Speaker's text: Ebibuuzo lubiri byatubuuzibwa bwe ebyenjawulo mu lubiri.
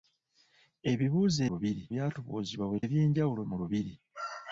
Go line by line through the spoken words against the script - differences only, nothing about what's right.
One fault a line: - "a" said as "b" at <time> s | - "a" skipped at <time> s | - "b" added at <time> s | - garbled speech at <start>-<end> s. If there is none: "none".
none